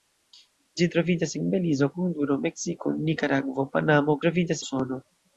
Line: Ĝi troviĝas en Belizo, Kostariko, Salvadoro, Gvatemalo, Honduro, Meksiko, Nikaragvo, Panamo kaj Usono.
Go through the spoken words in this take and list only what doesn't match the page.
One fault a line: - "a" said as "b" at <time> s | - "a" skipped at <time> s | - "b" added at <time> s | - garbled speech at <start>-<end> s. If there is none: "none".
- "Kostariko Salvadoro Gvatemalo" skipped at 1.9 s
- "kaj" said as "troviĝas" at 4.2 s